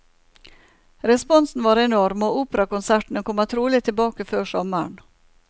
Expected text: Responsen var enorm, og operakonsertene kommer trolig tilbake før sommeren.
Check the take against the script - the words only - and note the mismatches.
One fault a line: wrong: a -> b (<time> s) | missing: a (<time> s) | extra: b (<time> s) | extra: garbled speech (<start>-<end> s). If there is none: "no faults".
no faults